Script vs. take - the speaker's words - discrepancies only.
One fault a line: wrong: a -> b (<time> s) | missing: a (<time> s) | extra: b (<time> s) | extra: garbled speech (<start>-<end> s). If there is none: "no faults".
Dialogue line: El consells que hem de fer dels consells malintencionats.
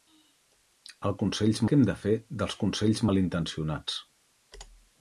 no faults